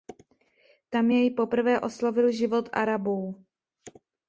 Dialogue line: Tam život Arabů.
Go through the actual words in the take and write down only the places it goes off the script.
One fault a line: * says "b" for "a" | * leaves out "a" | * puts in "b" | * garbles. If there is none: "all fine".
* puts in "jej poprvé oslovil"